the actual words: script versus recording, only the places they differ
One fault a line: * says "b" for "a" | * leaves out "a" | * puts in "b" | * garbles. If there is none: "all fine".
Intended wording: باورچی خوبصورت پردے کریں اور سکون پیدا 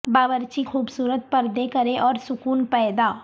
all fine